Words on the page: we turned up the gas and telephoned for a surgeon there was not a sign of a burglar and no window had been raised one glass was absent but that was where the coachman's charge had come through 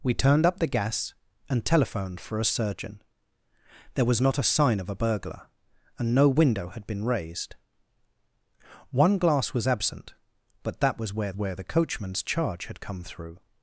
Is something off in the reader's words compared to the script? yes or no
yes